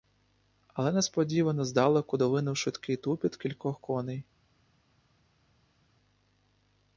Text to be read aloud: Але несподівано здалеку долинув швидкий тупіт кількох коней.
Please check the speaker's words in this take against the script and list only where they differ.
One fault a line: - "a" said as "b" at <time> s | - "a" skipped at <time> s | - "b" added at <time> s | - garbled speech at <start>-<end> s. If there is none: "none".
none